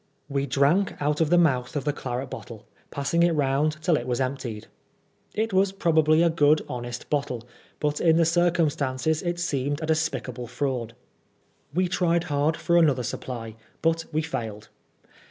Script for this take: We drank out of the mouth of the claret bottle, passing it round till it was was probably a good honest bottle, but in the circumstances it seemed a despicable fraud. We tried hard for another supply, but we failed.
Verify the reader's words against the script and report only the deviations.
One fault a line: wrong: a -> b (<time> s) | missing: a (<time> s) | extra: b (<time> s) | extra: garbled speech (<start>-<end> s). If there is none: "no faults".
extra: emptied It (4.2 s)